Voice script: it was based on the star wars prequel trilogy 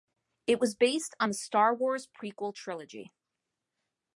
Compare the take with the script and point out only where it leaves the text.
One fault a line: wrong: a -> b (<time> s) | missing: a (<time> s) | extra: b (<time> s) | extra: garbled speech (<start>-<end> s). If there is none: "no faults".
no faults